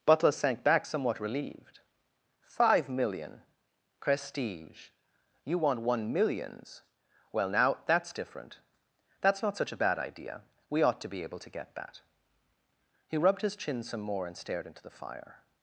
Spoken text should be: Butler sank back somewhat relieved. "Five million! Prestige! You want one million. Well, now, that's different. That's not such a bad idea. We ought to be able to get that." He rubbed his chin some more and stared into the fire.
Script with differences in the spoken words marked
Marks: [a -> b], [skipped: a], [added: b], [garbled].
Butler sank back somewhat relieved. "Five million! Prestige! You want one [million. -> millions] Well, now, that's different. That's not such a bad idea. We ought to be able to get that." He rubbed his chin some more and stared into the fire.